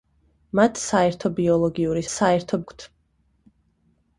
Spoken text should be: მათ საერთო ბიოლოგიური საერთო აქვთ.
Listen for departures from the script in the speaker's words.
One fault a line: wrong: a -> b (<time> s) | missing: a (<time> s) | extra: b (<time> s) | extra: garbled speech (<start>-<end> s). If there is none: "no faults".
no faults